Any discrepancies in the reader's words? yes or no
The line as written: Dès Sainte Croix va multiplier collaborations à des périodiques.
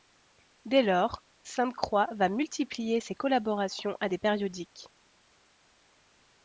yes